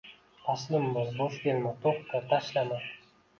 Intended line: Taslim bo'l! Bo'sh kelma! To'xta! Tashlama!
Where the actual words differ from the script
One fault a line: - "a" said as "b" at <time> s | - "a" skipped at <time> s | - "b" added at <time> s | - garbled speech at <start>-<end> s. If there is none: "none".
none